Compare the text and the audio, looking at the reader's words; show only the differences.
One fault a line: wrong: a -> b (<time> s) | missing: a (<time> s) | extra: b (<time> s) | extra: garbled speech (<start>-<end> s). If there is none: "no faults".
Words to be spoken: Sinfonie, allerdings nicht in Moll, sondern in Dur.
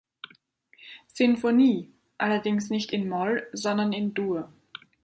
no faults